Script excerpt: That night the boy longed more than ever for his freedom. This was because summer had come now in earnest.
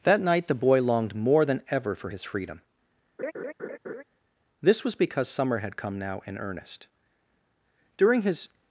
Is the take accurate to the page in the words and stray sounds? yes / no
no